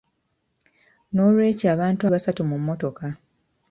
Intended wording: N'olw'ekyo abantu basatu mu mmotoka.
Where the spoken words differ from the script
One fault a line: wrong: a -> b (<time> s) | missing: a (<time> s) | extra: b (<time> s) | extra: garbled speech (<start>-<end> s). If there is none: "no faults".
no faults